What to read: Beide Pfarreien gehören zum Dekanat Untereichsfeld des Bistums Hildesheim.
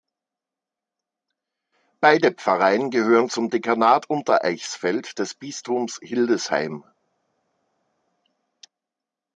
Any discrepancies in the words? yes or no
no